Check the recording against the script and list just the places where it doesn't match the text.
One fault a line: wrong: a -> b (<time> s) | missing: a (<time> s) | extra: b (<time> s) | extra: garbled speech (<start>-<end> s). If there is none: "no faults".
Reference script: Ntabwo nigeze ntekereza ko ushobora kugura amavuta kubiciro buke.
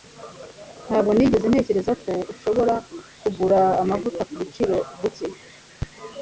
no faults